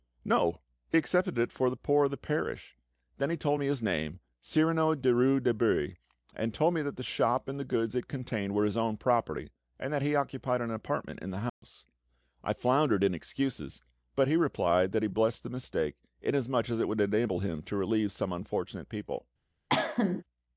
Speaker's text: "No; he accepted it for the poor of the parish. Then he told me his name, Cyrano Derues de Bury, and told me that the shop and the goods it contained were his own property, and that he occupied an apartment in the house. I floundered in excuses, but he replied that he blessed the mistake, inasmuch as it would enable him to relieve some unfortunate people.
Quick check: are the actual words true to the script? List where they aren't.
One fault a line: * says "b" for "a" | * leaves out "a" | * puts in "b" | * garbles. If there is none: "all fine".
all fine